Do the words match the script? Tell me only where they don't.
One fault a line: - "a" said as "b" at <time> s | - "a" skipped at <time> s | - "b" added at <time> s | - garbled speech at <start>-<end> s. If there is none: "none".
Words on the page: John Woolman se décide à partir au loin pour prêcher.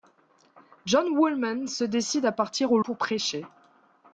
- "loin" skipped at 2.8 s